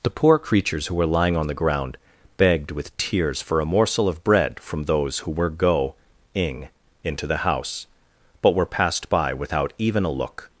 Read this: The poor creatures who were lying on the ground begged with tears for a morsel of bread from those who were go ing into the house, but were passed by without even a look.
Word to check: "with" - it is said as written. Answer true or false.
true